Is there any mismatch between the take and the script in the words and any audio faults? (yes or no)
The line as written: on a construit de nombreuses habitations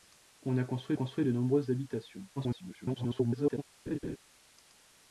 yes